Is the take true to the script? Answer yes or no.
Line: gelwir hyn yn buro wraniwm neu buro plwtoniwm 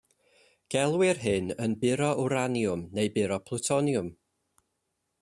yes